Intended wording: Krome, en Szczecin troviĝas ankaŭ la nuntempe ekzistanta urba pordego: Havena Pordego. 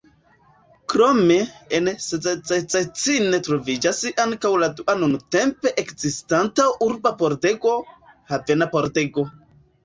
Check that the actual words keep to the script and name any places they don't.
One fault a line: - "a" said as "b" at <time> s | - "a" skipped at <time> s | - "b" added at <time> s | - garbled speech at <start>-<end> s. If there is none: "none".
- "dua" added at 4.8 s